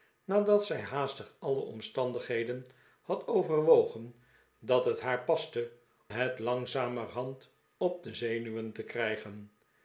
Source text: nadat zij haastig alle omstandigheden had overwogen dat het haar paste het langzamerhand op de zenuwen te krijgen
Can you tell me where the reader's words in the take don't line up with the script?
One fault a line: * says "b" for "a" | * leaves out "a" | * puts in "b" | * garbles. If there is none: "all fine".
all fine